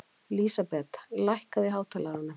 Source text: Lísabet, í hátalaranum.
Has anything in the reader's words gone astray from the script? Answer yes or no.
yes